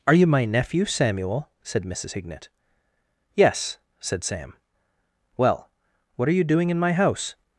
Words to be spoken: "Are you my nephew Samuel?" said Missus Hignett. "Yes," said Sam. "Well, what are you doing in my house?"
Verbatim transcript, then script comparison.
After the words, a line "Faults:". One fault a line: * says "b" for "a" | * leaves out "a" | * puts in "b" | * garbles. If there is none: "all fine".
"Are you my nephew Samuel?" said Missus Hignett. "Yes," said Sam. "Well, what are you doing in my house?"
Faults:
all fine